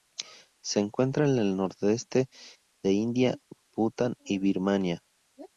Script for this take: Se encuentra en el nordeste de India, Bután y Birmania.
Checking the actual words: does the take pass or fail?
pass